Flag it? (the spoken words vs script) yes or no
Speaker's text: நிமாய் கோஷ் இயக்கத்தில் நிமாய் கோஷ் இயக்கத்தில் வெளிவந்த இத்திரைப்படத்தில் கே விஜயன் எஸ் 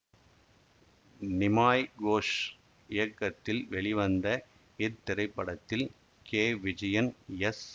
yes